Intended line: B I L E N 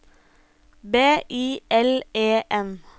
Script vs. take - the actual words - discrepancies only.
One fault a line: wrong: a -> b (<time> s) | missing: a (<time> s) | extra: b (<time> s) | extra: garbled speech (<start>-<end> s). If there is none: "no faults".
no faults